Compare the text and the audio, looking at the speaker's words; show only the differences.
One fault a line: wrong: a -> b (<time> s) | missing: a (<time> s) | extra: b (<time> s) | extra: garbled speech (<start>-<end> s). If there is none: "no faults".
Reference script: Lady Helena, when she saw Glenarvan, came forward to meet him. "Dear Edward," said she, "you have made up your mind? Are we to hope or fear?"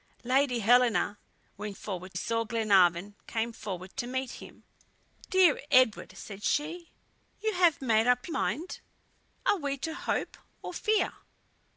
wrong: she -> forward (1.7 s)
missing: your (8.3 s)